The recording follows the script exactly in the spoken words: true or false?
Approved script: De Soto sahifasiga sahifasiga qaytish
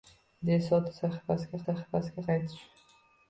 true